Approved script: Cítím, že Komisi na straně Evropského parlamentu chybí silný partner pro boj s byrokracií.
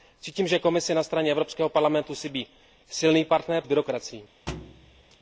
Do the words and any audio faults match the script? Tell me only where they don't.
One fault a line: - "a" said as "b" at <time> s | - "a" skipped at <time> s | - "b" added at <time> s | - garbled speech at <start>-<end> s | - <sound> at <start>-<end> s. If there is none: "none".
- "pro boj" skipped at 3.6 s
- thud at 4.5-5.2 s